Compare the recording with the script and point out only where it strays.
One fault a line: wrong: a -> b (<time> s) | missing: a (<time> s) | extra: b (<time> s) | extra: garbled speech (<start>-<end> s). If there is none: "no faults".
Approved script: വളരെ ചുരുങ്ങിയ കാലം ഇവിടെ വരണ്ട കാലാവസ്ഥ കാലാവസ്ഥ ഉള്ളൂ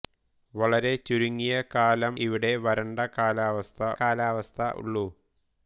no faults